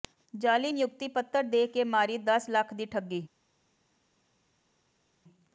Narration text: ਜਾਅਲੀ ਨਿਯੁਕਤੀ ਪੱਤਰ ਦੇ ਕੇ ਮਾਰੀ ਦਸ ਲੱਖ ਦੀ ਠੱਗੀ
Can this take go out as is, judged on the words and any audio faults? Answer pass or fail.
pass